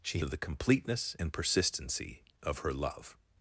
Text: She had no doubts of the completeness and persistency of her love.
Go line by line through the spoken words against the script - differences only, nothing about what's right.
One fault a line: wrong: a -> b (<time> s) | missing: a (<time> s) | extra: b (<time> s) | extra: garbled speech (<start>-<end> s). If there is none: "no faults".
missing: had no doubts (0.2 s)